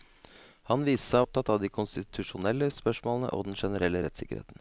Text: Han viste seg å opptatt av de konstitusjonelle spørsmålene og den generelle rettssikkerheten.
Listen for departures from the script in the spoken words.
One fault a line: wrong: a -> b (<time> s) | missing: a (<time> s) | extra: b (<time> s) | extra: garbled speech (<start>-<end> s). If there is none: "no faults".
no faults